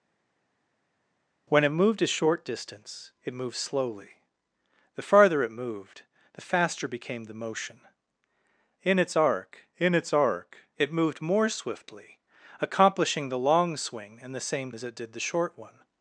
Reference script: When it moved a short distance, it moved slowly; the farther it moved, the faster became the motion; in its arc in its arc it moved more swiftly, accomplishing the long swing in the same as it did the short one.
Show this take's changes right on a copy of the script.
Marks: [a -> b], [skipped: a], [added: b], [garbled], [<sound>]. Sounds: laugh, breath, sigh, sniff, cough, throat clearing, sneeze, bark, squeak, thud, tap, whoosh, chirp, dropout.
When it moved a short distance, it moved slowly; the farther it moved, the faster became the motion; in its arc in its arc it moved more swiftly, accomplishing the long swing in the same as it did the short one.